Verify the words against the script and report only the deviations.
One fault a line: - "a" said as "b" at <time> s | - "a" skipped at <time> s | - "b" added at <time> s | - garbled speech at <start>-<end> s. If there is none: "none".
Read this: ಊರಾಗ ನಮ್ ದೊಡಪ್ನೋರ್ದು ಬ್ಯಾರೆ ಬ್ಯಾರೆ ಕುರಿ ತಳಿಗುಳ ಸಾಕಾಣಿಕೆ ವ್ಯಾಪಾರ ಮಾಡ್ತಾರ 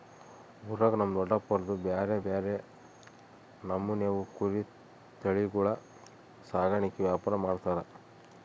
- "ನಮೂನೆವು" added at 3.6 s